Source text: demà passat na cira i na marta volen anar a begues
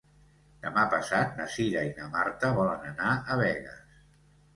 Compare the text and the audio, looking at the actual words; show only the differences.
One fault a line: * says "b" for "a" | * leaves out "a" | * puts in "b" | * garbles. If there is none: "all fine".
all fine